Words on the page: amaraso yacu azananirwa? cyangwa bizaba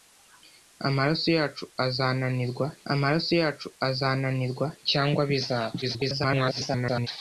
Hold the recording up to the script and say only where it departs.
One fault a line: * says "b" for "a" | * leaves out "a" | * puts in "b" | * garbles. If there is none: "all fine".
* puts in "amaraso yacu azananirwa"
* garbles